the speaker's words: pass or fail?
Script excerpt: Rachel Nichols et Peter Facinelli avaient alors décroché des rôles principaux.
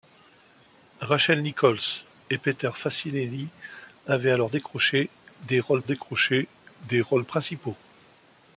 fail